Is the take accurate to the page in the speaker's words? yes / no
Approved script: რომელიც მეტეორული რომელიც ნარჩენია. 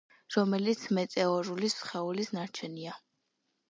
no